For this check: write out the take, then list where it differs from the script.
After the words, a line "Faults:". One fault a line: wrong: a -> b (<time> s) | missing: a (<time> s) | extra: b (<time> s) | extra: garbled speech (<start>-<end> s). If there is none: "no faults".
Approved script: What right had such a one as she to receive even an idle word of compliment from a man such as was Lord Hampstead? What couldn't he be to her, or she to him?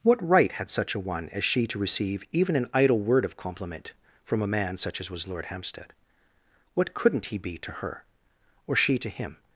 What right had such a one as she to receive even an idle word of compliment from a man such as was Lord Hampstead? What couldn't he be to her, or she to him?
Faults:
no faults